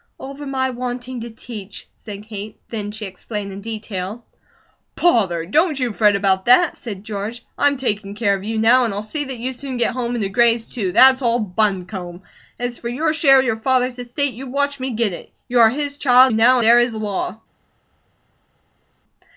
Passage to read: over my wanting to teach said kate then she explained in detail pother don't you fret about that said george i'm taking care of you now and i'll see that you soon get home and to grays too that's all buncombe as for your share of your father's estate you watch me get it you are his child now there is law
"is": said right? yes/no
yes